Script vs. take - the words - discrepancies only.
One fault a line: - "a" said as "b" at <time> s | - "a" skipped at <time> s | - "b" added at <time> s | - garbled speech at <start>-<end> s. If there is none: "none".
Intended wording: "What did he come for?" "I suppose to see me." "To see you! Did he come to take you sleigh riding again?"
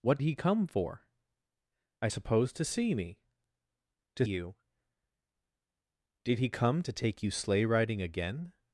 - "did" skipped at 0.2 s
- "see" skipped at 4.3 s